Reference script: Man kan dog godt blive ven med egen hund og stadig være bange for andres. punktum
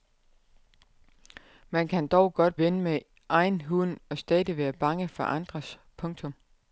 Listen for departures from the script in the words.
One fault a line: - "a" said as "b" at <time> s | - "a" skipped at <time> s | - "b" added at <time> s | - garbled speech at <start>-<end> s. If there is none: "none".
- "blive" skipped at 2.6 s